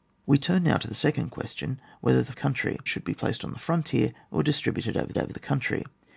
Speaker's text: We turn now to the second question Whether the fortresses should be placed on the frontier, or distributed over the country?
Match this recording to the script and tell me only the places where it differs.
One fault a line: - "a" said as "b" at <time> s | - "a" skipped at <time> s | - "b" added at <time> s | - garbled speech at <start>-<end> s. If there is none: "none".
- "fortresses" said as "country" at 2.3 s
- "over" added at 5.2 s